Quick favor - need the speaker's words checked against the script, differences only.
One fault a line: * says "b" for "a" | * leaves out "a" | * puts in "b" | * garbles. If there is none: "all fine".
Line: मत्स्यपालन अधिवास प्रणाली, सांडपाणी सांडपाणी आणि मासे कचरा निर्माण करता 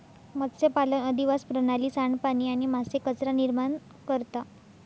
* leaves out "सांडपाणी"